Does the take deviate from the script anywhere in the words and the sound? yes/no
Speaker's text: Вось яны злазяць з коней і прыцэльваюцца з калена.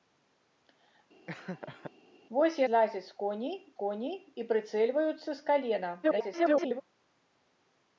yes